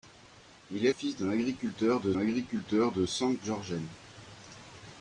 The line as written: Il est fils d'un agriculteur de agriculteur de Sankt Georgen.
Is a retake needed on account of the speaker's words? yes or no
no